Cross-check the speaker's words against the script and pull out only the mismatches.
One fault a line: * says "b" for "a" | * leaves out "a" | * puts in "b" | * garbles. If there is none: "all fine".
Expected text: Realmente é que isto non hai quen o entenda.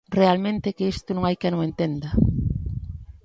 all fine